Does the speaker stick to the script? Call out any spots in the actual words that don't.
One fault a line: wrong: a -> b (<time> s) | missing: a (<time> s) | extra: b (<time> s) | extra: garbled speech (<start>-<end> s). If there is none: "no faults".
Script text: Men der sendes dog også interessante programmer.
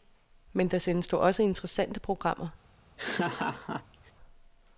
no faults